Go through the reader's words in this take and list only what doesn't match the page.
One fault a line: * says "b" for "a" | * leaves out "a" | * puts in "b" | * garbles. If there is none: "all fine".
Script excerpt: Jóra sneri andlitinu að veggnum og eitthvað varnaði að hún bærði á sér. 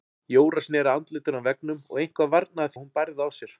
all fine